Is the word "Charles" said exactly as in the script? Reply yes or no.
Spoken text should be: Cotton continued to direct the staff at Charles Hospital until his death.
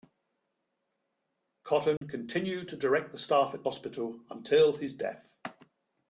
no